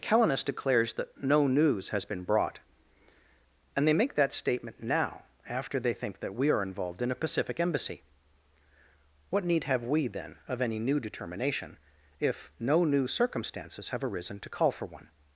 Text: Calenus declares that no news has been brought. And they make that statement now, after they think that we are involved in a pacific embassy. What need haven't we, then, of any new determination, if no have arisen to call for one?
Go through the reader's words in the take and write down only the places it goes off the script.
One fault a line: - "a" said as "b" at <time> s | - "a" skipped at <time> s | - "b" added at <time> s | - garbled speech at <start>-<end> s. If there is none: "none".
- "haven't" said as "have" at 9.7 s
- "new circumstances" added at 12.8 s